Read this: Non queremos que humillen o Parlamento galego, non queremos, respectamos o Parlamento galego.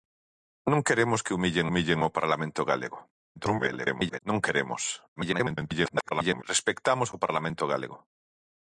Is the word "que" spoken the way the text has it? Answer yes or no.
yes